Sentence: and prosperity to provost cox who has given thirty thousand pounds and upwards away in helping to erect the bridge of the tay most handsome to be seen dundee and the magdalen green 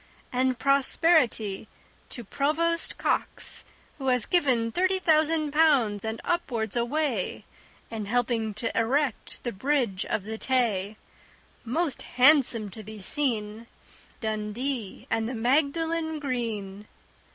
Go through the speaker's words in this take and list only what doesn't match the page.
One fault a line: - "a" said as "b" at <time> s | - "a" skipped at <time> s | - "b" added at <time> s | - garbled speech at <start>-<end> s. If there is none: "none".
none